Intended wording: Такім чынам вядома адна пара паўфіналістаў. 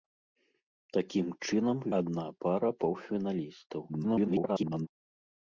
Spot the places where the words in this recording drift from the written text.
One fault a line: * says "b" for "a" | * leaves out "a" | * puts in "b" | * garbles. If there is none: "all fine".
* leaves out "вядома"
* garbles